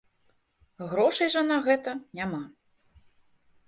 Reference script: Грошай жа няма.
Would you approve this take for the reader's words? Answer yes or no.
no